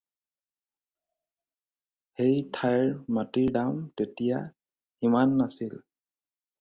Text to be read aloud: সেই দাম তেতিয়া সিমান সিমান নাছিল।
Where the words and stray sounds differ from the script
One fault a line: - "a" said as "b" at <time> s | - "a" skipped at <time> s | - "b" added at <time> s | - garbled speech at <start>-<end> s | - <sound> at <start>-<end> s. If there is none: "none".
- "ঠাইৰ মাটিৰ" added at 2.5 s
- "সিমান" skipped at 5.3 s